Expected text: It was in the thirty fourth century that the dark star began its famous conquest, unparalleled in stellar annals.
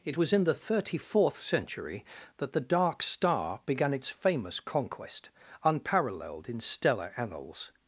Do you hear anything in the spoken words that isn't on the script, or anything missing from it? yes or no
no